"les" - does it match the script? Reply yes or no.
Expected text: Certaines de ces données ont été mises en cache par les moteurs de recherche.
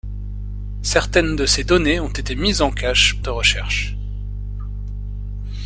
no